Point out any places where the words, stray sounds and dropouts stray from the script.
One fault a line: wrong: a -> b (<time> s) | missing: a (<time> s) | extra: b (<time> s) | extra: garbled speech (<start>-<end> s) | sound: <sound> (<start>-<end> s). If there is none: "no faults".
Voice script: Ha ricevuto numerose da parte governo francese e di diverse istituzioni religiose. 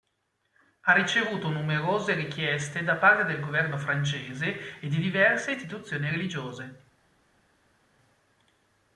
extra: richieste (2.1 s)
extra: del (3.2 s)